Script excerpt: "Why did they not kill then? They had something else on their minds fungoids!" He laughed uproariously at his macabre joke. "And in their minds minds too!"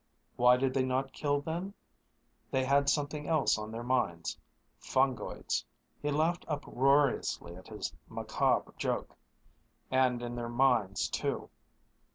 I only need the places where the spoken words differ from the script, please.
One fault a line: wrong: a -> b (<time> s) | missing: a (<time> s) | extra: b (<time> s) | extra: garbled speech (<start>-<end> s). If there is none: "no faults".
missing: minds (11.1 s)